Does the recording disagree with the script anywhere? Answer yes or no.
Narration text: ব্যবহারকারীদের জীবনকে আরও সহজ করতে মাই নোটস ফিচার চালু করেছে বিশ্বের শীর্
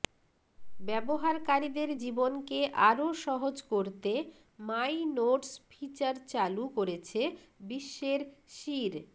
no